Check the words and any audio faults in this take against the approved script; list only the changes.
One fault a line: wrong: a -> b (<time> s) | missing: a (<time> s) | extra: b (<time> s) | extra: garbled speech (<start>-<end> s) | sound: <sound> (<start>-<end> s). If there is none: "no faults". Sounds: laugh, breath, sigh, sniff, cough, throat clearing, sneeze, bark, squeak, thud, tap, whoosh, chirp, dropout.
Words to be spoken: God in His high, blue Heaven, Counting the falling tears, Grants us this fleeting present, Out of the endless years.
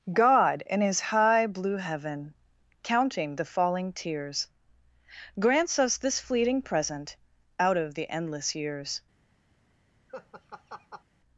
sound: laugh (10.1-11.0 s)